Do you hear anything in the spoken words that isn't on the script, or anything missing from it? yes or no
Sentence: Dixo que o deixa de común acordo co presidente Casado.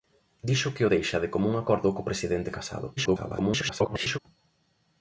yes